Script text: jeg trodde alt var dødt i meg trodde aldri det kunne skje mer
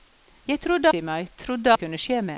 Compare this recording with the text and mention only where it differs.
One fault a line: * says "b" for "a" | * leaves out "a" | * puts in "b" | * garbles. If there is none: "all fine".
* leaves out "alt var dødt"
* leaves out "aldri"